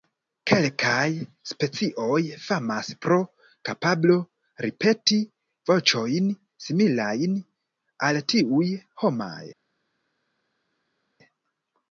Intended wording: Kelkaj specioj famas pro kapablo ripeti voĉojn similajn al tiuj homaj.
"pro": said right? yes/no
yes